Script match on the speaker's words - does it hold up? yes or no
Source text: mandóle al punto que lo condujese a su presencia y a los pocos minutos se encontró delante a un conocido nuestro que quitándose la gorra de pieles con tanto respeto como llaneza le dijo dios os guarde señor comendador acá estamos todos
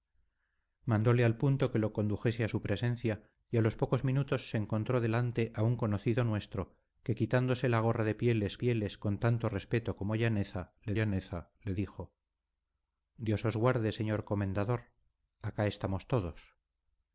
no